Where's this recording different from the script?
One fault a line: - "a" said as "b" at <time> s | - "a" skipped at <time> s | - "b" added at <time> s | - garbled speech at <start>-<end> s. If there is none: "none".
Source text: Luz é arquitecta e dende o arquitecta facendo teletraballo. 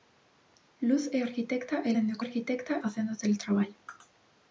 none